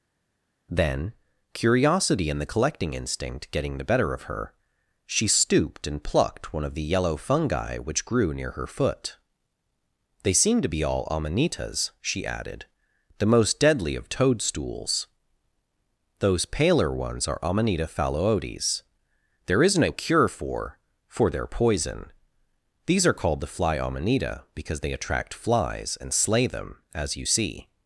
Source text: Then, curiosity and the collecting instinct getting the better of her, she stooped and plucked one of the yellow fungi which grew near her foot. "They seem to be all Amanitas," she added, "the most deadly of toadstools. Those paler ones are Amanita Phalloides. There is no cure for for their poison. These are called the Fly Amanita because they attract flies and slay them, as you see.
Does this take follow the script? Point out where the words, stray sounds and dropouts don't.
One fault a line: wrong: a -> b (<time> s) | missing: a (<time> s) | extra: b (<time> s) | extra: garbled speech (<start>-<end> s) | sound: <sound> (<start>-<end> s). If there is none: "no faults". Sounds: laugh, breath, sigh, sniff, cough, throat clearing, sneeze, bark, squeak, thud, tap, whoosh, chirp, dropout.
no faults